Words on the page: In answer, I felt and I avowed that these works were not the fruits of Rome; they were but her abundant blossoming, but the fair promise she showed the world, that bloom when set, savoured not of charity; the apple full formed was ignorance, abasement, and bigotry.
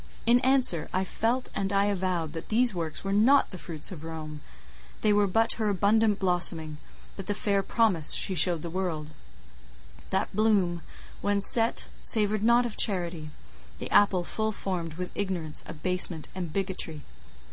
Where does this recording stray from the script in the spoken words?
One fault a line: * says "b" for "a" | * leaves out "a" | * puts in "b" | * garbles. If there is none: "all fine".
all fine